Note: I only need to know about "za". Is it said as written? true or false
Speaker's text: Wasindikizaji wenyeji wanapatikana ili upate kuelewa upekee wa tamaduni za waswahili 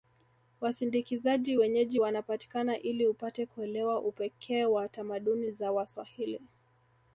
true